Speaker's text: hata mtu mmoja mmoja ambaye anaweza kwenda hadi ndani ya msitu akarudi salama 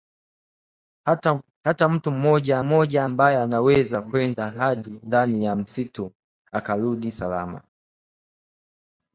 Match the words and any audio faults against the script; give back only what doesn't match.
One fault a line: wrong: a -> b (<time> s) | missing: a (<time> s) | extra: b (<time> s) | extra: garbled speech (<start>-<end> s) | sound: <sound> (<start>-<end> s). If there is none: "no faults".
no faults